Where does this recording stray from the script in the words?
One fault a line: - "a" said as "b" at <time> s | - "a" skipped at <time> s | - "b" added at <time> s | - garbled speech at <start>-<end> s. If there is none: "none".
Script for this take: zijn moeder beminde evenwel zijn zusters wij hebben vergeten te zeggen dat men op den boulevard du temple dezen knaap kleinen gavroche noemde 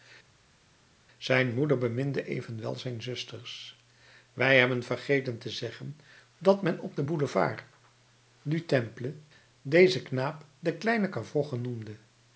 - "den" added at 10.6 s